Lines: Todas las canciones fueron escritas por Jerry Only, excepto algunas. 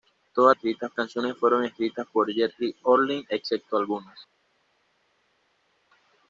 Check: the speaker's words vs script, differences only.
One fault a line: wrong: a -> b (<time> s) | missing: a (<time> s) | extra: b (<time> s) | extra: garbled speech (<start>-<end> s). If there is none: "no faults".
wrong: las -> escritas (0.5 s)